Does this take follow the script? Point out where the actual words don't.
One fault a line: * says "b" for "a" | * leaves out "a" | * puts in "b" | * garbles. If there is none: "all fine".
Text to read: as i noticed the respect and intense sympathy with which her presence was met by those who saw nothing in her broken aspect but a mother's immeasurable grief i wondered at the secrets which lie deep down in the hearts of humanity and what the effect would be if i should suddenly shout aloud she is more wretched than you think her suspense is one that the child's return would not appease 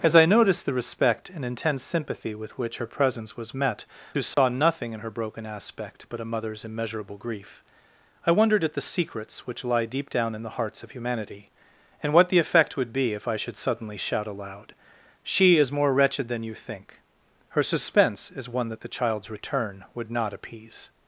* leaves out "by those"